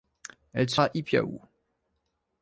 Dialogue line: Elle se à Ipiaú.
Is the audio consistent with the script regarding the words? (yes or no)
yes